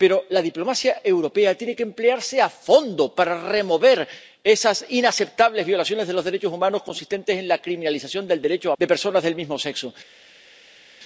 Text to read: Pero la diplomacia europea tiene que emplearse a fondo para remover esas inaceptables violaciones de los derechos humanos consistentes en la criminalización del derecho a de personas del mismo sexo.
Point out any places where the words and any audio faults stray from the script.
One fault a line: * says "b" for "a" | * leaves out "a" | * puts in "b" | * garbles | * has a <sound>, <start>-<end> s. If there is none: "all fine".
all fine